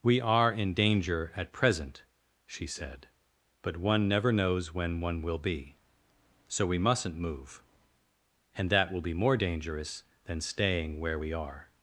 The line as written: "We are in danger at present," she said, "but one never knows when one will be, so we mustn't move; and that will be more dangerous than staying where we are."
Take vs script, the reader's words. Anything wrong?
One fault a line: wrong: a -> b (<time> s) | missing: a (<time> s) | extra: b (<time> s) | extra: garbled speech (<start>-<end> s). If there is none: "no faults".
no faults